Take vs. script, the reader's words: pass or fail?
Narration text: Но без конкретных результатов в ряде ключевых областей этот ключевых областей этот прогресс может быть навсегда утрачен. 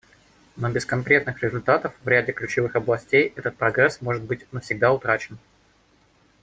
fail